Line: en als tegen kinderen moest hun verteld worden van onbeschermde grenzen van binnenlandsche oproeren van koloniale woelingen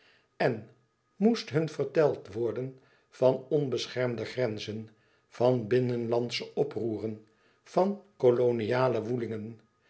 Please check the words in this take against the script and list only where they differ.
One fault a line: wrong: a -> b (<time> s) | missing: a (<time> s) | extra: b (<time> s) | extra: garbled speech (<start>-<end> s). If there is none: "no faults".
missing: als tegen kinderen (0.7 s)